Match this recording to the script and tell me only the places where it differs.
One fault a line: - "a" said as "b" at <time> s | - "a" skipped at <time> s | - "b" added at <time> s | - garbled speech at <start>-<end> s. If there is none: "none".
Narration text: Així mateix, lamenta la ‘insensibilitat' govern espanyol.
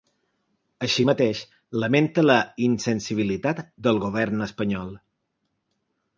- "del" added at 3.9 s